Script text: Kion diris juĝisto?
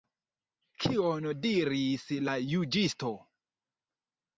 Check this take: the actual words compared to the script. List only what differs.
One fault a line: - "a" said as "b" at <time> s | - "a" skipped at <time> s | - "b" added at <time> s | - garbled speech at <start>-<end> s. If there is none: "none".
- "la" added at 2.3 s